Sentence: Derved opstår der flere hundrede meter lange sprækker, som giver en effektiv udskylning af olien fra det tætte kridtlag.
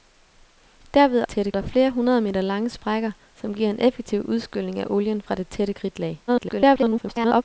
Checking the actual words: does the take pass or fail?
fail